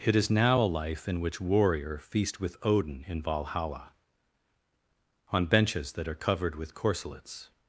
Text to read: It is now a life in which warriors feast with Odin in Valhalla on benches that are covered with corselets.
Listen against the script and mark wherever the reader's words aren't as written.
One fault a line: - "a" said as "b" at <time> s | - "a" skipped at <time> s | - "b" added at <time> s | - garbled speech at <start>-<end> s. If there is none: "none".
- "warriors" said as "warrior" at 1.4 s